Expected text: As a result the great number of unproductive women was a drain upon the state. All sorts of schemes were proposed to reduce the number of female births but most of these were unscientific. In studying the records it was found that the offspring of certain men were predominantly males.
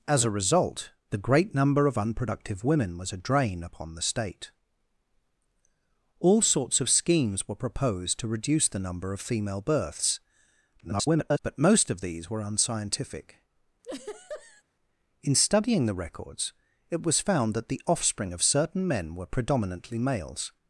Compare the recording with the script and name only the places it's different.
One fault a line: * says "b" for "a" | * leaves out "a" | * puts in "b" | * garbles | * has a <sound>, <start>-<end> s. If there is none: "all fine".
* garbles
* has a laugh, 13.8-14.6 s